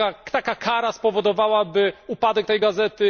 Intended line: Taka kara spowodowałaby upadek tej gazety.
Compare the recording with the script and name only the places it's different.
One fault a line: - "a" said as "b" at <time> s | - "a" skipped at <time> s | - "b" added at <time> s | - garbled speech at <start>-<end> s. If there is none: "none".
none